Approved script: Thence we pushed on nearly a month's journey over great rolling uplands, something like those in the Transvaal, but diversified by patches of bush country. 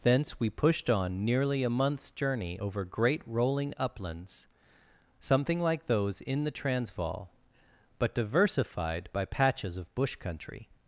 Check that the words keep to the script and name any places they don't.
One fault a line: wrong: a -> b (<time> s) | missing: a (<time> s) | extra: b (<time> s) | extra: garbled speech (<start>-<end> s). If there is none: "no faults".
no faults